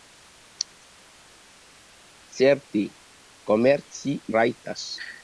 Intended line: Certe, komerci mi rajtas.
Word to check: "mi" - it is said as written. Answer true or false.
false